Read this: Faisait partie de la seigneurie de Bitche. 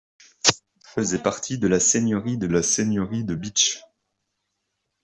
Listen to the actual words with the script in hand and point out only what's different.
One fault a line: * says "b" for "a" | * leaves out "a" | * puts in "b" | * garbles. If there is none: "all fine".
* puts in "la seigneurie de"